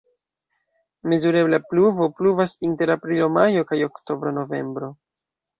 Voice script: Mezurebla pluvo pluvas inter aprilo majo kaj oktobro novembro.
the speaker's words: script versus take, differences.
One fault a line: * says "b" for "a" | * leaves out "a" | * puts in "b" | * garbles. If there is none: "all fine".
all fine